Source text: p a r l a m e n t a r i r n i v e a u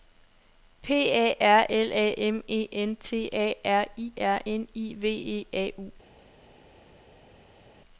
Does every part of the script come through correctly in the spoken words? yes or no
yes